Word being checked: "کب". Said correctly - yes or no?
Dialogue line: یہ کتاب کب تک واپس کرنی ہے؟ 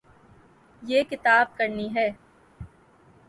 no